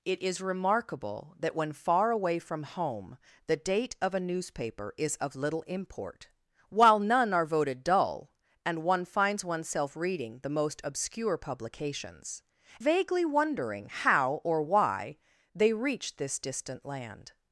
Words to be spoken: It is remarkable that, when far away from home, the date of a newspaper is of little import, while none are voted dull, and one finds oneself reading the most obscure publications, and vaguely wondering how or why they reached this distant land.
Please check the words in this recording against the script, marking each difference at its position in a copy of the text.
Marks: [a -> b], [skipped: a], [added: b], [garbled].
It is remarkable that, when far away from home, the date of a newspaper is of little import, while none are voted dull, and one finds oneself reading the most obscure publications, [skipped: and] vaguely wondering how or why they reached this distant land.